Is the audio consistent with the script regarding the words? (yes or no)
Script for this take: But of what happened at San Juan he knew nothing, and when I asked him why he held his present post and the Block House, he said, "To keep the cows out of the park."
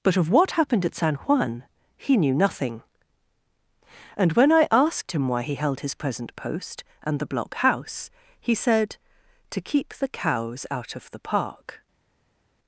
yes